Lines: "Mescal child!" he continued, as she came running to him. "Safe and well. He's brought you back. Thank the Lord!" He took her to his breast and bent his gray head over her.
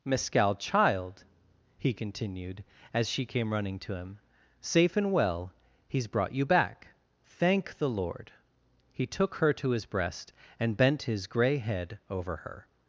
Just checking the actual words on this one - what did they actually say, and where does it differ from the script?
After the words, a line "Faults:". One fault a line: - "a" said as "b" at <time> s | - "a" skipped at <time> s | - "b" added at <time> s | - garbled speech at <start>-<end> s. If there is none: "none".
"Mescal child!" he continued, as she came running to him. "Safe and well. He's brought you back. Thank the Lord!" He took her to his breast and bent his gray head over her.
Faults:
none